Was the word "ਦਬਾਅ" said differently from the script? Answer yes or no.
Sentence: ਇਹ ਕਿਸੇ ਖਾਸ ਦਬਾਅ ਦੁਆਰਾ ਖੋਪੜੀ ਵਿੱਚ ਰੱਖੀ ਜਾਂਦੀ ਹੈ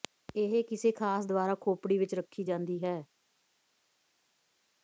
yes